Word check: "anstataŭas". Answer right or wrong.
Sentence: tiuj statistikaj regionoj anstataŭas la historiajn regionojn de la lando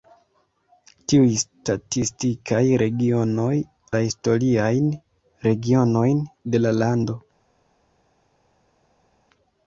wrong